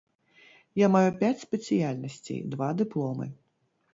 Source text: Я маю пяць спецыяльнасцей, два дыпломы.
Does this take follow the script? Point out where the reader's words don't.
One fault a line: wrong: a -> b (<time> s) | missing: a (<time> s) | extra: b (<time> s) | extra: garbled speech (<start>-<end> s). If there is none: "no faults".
no faults